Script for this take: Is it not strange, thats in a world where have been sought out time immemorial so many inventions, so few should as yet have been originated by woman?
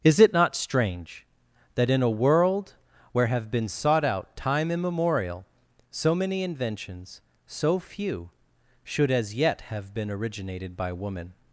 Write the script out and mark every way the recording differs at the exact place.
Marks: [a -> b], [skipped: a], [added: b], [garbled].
Is it not strange, [thats -> that] in a world where have been sought out time immemorial so many inventions, so few should as yet have been originated by woman?